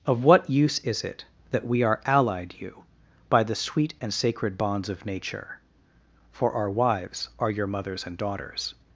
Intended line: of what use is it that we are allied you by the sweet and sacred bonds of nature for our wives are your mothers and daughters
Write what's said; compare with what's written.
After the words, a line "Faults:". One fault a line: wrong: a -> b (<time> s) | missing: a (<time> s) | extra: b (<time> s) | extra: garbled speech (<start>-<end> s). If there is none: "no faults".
of what use is it that we are allied you by the sweet and sacred bonds of nature for our wives are your mothers and daughters
Faults:
no faults